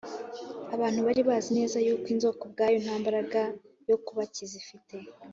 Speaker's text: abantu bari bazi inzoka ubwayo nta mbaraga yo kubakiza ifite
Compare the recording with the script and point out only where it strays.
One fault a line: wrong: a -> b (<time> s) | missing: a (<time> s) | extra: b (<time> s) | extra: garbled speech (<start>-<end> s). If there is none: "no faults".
extra: neza yuko (1.6 s)